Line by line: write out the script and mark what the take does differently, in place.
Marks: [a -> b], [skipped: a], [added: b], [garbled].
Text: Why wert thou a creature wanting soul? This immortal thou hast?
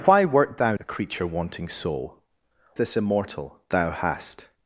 Why wert thou a creature wanting soul? This immortal thou hast?